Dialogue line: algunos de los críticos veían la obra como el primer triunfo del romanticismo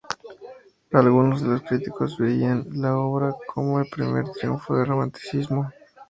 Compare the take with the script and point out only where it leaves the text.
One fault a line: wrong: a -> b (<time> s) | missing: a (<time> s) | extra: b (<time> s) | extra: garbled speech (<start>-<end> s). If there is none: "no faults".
no faults